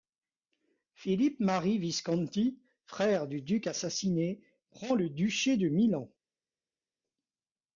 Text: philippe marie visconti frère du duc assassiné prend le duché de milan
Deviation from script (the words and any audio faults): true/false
false